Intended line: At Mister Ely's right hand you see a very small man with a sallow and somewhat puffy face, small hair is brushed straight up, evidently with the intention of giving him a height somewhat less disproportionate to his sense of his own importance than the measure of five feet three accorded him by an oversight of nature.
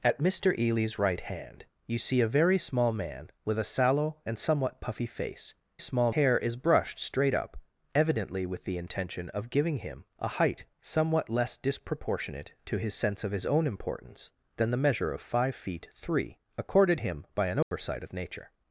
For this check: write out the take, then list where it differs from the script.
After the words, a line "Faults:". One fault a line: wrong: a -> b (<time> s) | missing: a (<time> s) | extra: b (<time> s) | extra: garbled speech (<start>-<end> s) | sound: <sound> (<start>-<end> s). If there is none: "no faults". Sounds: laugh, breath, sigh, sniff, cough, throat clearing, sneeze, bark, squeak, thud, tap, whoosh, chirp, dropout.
At Mister Ely's right hand you see a very small man with a sallow and somewhat puffy face, small hair is brushed straight up, evidently with the intention of giving him a height somewhat less disproportionate to his sense of his own importance than the measure of five feet three accorded him by an oversight of nature.
Faults:
sound: dropout (17.6-17.7 s)